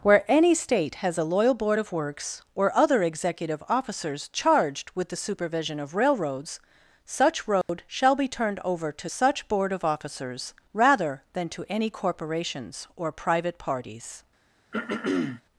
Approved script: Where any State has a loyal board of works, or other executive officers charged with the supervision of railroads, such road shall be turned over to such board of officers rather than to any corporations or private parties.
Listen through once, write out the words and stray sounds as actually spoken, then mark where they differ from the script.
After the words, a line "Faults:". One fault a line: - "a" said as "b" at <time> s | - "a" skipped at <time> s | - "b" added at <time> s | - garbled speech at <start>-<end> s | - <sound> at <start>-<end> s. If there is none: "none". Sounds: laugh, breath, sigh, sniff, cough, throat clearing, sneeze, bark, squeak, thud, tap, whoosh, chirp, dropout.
Where any State has a loyal board of works, or other executive officers charged with the supervision of railroads, such road shall be turned over to such board of officers rather than to any corporations or private parties.
Faults:
- dropout at 7.6-7.7 s
- throat clearing at 14.7-15.4 s